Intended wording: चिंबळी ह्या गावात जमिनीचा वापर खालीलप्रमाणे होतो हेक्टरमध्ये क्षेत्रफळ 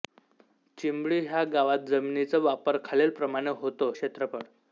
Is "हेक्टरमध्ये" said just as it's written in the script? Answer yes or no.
no